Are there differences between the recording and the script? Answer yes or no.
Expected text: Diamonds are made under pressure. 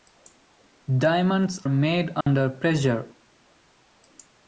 yes